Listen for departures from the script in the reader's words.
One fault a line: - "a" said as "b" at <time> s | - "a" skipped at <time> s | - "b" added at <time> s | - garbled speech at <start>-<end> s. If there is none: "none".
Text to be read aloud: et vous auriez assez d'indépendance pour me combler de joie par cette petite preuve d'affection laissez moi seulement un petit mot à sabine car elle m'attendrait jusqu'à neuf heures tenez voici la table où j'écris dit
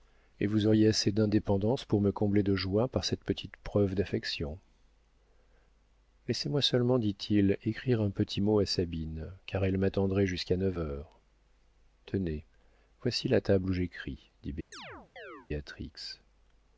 - "dit il écrire" added at 7.0 s